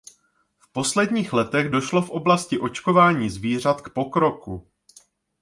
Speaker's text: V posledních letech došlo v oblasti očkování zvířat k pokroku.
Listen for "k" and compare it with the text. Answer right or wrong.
right